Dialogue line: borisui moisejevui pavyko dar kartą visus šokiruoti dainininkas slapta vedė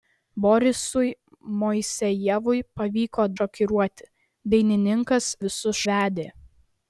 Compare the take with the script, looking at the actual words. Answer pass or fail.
fail